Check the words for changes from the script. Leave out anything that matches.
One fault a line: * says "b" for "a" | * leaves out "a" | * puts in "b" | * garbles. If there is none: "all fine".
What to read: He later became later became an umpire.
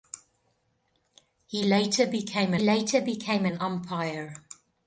all fine